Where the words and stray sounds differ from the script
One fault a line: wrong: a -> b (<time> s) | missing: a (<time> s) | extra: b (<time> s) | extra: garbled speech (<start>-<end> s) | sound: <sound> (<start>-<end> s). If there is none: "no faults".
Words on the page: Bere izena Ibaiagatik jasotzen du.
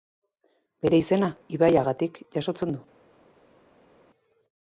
no faults